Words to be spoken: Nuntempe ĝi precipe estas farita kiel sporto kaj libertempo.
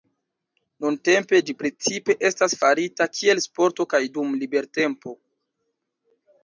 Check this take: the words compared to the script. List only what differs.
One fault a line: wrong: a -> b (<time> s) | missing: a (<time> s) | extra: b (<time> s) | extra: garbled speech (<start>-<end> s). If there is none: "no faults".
extra: dum (4.2 s)